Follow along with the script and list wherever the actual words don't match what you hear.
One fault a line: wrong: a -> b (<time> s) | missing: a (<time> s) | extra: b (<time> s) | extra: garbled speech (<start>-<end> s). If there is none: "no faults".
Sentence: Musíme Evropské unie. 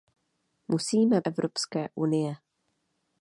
no faults